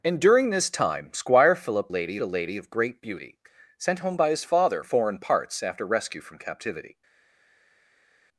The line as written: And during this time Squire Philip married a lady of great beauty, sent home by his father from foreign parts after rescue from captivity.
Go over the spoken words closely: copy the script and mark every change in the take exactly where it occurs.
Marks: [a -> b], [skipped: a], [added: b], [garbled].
And during this time Squire Philip [married -> lady] a lady of great beauty, sent home by his father [skipped: from] foreign parts after rescue from captivity.